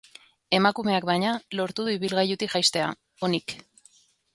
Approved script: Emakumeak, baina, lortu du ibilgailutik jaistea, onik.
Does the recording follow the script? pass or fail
pass